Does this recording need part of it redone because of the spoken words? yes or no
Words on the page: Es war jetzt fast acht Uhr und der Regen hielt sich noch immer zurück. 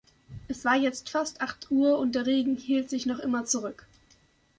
no